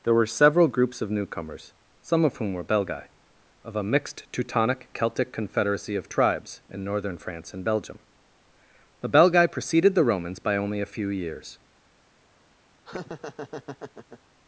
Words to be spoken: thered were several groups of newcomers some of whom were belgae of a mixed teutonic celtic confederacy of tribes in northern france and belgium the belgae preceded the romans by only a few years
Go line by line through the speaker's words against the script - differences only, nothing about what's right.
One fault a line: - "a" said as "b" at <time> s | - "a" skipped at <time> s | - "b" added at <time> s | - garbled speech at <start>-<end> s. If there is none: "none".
- "thered" said as "there" at 0.0 s